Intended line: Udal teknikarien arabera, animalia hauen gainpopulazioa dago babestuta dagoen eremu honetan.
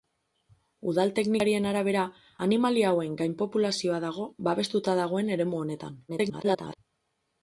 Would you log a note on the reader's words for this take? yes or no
yes